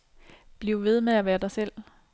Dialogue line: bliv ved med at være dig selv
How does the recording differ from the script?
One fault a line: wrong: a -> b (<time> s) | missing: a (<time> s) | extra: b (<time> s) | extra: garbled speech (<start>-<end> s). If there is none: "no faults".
no faults